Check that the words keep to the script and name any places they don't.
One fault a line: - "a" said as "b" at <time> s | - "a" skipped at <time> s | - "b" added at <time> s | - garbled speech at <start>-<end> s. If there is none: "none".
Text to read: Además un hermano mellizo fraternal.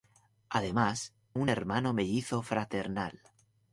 none